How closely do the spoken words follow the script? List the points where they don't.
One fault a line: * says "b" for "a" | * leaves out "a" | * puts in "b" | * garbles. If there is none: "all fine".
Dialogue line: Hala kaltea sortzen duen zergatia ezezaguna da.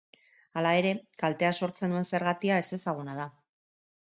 * puts in "ere"